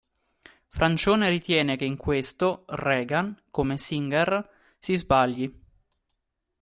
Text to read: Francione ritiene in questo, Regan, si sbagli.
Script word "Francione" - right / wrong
right